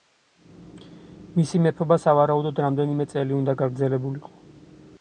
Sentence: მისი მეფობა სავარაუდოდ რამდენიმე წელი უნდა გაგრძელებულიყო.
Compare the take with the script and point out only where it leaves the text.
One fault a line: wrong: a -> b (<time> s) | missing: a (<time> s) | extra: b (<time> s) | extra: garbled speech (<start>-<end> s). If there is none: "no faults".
no faults